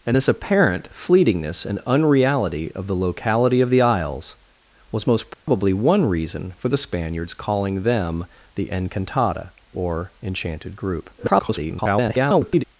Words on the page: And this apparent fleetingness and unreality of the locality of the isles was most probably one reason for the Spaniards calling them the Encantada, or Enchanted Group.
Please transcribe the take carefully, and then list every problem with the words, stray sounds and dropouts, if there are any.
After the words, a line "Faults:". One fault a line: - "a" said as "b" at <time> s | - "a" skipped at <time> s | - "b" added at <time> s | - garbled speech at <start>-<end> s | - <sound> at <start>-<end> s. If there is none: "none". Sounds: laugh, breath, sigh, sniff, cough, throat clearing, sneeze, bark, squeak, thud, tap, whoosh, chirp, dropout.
And this apparent fleetingness and unreality of the locality of the isles was most probably one reason for the Spaniards calling them the Encantada, or Enchanted Group. [garbled]
Faults:
- dropout at 5.3-5.5 s
- garbled speech at 11.2-12.6 s